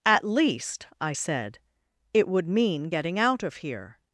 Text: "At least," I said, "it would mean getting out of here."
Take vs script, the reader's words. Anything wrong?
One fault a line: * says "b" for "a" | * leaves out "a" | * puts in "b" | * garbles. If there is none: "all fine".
all fine